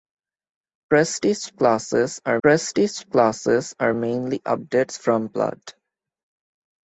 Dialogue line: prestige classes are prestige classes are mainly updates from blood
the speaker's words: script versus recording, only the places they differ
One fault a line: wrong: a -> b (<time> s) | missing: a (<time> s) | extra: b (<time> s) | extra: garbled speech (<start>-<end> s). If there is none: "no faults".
no faults